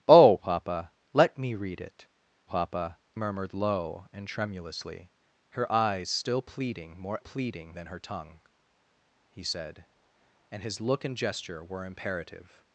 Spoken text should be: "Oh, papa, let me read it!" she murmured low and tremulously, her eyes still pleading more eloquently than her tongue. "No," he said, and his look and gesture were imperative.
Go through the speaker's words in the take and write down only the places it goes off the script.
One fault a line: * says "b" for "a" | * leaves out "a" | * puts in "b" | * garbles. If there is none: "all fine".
* says "papa" for "she"
* says "pleading" for "eloquently"
* leaves out "No"